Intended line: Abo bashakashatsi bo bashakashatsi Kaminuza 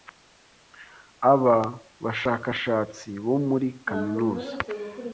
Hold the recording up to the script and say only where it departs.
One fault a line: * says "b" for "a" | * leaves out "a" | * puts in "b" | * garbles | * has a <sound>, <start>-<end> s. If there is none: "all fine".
* says "Aba" for "Abo"
* says "muri" for "bashakashatsi"